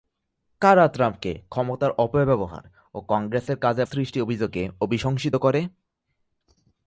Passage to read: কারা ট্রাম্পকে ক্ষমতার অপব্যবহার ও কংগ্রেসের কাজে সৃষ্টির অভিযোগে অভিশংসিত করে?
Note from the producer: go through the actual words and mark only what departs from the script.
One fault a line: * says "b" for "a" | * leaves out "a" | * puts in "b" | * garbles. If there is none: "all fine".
all fine